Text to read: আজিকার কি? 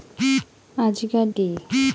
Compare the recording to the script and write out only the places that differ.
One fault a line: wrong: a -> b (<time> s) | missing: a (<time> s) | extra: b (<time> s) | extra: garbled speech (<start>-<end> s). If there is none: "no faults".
no faults